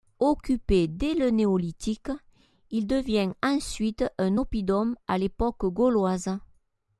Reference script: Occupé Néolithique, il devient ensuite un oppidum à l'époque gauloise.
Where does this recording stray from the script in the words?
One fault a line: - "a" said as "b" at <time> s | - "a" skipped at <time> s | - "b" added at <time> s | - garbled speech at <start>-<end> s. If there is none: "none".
- "dès le" added at 0.9 s